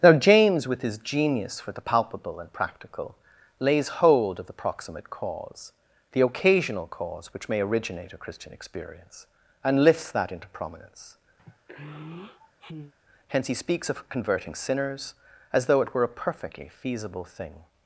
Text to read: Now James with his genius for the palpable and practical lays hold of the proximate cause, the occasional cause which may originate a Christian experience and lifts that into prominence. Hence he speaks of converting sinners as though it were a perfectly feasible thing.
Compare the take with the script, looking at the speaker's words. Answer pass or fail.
pass